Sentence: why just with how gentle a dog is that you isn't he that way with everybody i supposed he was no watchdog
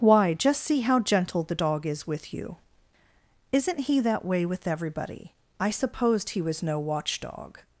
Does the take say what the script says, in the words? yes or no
no